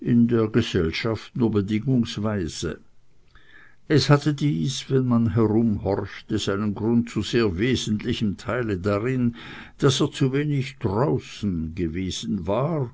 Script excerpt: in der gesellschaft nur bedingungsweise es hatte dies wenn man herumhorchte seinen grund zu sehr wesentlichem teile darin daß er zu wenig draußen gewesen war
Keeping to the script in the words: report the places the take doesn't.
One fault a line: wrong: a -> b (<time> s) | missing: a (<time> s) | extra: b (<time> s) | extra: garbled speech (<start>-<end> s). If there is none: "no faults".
no faults